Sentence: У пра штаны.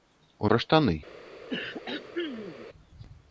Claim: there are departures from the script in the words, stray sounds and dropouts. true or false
true